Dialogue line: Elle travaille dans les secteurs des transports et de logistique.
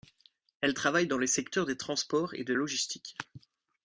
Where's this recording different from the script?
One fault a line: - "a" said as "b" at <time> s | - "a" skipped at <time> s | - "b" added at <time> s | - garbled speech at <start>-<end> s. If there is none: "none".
none